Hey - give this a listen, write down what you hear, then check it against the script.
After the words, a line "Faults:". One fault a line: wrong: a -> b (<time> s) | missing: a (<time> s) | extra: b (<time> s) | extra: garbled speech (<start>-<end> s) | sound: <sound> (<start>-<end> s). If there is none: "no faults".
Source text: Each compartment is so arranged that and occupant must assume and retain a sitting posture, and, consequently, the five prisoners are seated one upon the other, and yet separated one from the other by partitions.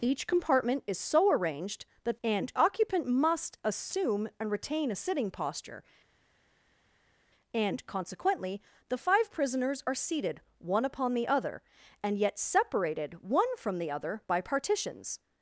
Each compartment is so arranged that and occupant must assume and retain a sitting posture, and, consequently, the five prisoners are seated one upon the other, and yet separated one from the other by partitions.
Faults:
no faults